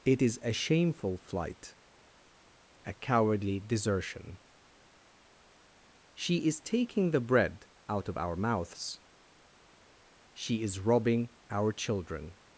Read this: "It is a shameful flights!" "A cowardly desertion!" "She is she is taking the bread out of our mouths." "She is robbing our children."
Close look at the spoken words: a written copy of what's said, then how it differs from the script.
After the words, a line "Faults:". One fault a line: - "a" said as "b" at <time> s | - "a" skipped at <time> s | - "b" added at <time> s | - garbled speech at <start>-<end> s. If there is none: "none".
"It is a shameful flight!" "A cowardly desertion!" "She is taking the bread out of our mouths." "She is robbing our children."
Faults:
- "flights" said as "flight" at 1.2 s
- "she is" skipped at 6.6 s